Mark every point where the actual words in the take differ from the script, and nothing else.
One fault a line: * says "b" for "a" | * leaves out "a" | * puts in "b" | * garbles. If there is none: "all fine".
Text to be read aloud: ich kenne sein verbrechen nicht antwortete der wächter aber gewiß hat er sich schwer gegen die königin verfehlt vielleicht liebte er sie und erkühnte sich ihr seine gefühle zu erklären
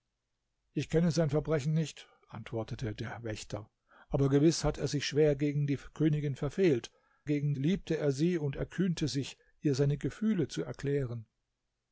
* says "gegen" for "vielleicht"